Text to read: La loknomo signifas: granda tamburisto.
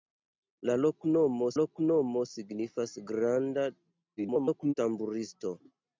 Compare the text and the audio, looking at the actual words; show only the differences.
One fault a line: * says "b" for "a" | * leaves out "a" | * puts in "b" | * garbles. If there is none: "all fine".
* puts in "loknomo"
* garbles